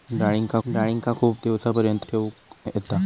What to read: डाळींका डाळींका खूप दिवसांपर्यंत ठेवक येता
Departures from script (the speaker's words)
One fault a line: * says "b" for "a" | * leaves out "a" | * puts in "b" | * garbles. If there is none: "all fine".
all fine